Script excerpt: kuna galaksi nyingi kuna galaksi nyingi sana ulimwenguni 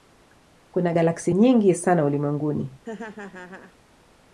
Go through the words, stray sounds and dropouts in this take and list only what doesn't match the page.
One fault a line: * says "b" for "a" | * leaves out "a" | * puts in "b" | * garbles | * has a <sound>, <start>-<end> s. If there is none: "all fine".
* leaves out "kuna galaksi nyingi"
* has a laugh, 2.8-3.8 s